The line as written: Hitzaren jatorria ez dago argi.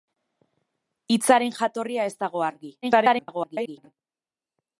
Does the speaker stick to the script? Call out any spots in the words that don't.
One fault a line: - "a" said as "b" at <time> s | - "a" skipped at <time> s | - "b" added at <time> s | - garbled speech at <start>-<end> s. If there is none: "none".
- garbled speech at 2.8-3.9 s